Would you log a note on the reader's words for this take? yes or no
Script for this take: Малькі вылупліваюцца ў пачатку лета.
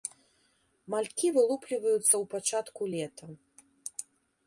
no